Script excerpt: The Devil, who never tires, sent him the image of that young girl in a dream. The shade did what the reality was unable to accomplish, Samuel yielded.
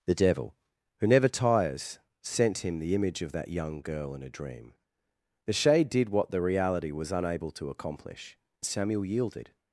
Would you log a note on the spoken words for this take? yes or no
no